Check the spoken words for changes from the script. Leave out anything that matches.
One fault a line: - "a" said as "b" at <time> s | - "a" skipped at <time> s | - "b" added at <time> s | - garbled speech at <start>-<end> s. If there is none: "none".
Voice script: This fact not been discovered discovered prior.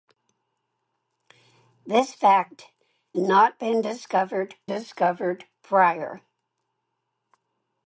none